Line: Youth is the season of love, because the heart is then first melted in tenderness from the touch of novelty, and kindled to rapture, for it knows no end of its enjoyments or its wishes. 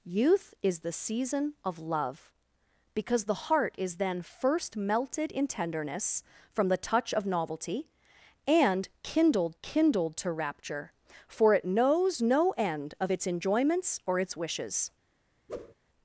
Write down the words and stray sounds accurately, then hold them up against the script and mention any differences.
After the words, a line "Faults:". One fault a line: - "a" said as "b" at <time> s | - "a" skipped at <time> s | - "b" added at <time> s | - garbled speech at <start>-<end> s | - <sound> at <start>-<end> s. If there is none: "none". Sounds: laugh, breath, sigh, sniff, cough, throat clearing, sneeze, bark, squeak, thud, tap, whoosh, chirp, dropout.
Youth is the season of love, because the heart is then first melted in tenderness from the touch of novelty, and kindled kindled to rapture, for it knows no end of its enjoyments or its wishes.
Faults:
- "kindled" added at 9.6 s
- whoosh at 15.5-15.7 s